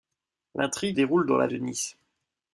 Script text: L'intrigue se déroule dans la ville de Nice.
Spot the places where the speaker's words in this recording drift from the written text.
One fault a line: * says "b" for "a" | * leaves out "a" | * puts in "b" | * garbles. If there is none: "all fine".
* leaves out "se"
* leaves out "ville"